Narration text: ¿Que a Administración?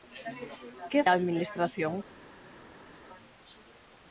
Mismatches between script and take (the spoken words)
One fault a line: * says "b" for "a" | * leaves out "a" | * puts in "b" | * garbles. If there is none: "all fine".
all fine